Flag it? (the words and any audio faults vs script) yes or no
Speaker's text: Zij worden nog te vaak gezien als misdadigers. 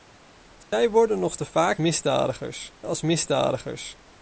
yes